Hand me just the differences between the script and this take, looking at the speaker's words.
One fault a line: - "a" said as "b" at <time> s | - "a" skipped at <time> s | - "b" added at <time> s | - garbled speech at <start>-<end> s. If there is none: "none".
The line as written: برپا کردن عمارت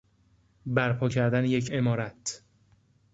- "یک" added at 1.5 s